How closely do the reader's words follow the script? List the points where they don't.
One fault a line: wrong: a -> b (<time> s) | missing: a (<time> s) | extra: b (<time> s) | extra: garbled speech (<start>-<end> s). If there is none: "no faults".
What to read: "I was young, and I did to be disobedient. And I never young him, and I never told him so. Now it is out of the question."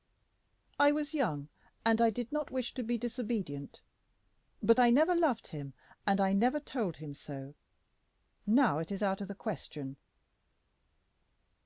extra: not wish (2.3 s)
wrong: And -> But (4.6 s)
wrong: young -> loved (5.1 s)